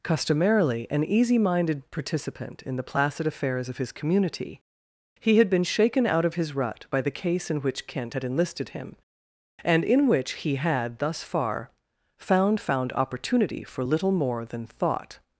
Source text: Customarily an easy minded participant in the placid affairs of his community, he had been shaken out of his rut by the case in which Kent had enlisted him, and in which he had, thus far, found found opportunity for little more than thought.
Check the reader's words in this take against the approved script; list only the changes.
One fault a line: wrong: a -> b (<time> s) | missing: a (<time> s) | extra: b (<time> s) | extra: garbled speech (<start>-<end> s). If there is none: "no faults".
no faults